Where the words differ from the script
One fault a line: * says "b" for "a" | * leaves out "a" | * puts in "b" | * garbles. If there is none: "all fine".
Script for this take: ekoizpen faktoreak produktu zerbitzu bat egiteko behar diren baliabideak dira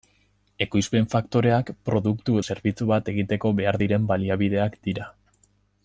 all fine